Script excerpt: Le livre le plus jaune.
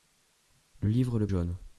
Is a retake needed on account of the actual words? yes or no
yes